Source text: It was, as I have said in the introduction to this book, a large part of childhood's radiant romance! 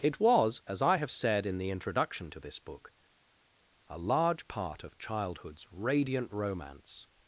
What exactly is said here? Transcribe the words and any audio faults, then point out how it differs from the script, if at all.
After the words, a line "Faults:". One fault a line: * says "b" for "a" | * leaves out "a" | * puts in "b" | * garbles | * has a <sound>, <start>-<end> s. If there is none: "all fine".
It was, as I have said in the introduction to this book, a large part of childhood's radiant romance!
Faults:
all fine